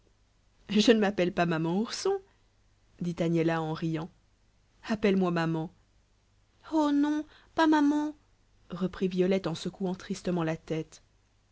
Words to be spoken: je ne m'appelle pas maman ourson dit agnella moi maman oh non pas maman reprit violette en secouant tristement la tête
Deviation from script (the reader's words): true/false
true